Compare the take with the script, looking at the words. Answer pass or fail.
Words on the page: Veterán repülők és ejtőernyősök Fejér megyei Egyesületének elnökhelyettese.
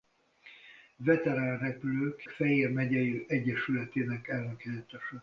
fail